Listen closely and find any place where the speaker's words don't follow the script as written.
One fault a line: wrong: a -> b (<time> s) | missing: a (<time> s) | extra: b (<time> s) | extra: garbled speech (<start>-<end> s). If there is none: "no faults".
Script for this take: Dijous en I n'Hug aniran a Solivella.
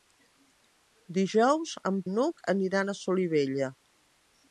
no faults